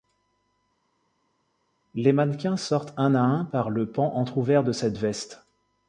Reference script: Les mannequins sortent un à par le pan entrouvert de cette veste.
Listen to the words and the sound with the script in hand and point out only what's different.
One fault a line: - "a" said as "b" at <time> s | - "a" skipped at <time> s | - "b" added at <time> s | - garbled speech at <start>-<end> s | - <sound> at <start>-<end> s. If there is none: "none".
- "un" added at 3.2 s